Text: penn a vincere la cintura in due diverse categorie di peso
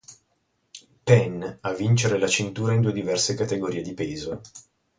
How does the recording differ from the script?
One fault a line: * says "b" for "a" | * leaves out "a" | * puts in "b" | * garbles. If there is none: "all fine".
all fine